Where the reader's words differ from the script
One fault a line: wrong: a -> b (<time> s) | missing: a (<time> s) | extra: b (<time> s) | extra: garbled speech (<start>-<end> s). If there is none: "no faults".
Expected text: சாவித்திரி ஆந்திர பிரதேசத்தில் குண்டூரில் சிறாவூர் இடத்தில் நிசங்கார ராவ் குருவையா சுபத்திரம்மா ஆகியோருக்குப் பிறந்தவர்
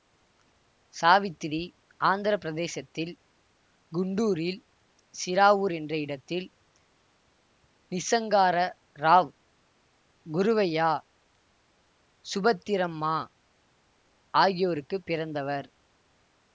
extra: என்ற (5.7 s)